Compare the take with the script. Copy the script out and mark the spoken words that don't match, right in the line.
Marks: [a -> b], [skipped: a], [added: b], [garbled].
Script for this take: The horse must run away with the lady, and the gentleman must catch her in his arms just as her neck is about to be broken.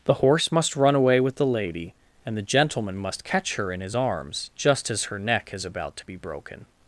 The horse must run away with the lady, and the gentleman must catch her in his arms just as her neck is about to be broken.